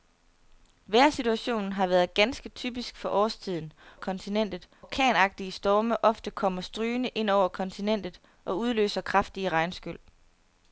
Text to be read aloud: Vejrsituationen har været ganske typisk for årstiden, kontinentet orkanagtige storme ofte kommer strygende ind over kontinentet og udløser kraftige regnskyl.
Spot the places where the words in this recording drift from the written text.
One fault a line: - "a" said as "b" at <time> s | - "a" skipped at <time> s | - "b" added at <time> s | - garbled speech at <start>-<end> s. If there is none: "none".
none